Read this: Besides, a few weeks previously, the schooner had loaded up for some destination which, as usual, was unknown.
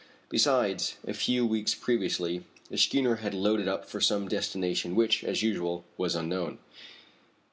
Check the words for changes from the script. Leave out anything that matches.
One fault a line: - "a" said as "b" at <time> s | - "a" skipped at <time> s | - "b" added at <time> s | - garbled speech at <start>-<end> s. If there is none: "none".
none